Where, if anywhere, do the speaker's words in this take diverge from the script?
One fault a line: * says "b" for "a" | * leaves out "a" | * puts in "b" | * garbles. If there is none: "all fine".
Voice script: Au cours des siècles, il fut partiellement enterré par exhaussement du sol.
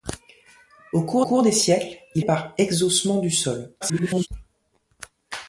* puts in "cours"
* leaves out "fut partiellement enterré"
* garbles